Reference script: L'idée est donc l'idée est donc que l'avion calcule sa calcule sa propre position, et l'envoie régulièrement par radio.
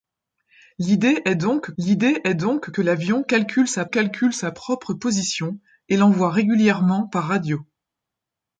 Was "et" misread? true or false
false